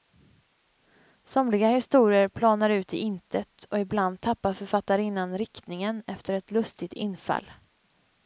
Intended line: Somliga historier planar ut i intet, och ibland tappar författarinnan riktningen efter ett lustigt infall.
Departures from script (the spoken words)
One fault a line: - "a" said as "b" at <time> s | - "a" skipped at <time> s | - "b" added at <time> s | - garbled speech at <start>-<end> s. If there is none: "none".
none